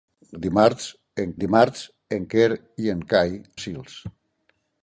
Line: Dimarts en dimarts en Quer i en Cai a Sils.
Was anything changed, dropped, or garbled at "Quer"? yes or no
no